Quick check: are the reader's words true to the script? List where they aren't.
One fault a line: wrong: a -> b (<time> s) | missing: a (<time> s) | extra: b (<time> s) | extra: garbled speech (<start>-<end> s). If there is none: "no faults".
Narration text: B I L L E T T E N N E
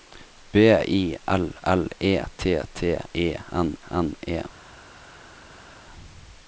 no faults